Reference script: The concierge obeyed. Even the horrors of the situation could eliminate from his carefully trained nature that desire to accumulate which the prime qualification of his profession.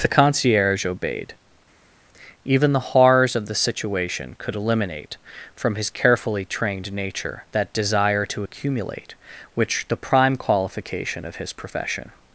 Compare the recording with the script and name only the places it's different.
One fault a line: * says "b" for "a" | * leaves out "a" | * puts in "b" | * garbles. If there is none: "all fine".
all fine